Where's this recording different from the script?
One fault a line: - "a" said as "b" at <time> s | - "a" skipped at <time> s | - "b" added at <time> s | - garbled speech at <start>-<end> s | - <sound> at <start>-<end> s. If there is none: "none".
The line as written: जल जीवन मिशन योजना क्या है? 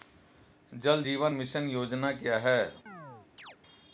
- chirp at 2.9-3.6 s